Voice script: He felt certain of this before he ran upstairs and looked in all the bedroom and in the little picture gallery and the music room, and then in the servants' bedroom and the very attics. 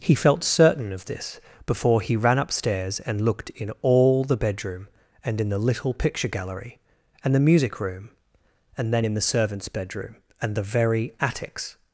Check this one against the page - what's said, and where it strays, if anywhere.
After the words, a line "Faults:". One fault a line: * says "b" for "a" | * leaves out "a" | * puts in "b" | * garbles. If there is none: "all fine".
He felt certain of this before he ran upstairs and looked in all the bedroom and in the little picture gallery and the music room, and then in the servants' bedroom and the very attics.
Faults:
all fine